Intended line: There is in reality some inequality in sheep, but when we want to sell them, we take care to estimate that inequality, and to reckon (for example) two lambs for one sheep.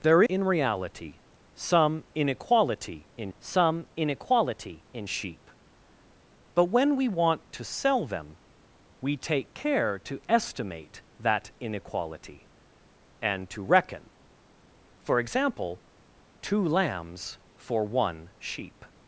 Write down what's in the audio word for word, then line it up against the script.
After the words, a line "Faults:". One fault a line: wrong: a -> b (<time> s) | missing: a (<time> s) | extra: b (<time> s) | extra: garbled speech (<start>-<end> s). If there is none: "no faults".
There in reality some inequality in some inequality in sheep, but when we want to sell them, we take care to estimate that inequality, and to reckon (for example) two lambs for one sheep.
Faults:
missing: is (0.2 s)
extra: some inequality in (3.4 s)